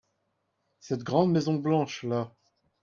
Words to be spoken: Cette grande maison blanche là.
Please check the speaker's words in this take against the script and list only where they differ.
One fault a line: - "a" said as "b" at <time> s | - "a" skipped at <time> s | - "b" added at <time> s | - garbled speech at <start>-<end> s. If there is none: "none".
none